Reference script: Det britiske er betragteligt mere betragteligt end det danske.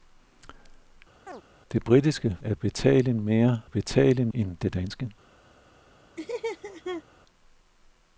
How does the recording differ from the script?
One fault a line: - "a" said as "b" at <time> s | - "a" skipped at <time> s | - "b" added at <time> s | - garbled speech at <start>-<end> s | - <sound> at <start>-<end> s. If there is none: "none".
- chirp at 1.3-1.4 s
- laugh at 6.2-7.0 s